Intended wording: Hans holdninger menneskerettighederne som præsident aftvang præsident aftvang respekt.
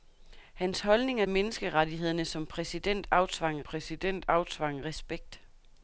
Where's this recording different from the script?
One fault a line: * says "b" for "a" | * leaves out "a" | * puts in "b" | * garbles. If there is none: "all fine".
all fine